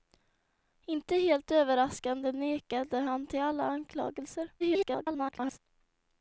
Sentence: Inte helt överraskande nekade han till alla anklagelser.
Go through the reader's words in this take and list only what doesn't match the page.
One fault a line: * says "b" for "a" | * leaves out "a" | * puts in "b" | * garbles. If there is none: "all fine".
* garbles